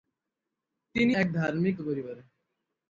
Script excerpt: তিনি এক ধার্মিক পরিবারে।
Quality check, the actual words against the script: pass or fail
pass